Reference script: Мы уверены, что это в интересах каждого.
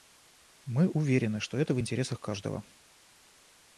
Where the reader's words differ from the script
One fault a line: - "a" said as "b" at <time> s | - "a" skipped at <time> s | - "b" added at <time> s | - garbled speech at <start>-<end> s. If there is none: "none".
none